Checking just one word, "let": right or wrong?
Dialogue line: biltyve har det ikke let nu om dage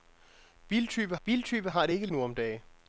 wrong